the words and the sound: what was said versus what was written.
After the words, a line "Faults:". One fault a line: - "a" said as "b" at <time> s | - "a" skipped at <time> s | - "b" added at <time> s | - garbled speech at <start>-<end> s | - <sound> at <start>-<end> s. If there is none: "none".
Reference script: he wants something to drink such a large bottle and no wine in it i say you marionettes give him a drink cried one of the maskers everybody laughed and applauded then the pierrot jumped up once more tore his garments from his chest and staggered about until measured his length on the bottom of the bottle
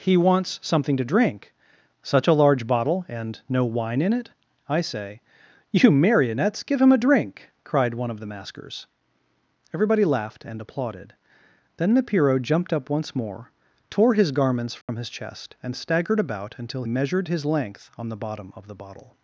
he wants something to drink such a large bottle and no wine in it i say you marionettes give him a drink cried one of the maskers everybody laughed and applauded then the pierrot jumped up once more tore his garments from his chest and staggered about until measured his length on the bottom of the bottle
Faults:
- dropout at 14.8-14.9 s